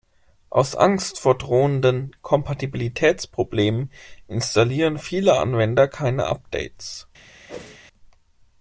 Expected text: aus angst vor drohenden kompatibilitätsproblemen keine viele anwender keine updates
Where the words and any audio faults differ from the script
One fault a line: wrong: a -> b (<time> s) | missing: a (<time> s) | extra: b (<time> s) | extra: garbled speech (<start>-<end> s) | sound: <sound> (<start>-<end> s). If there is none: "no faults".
wrong: keine -> installieren (4.3 s)
sound: whoosh (7.5-7.8 s)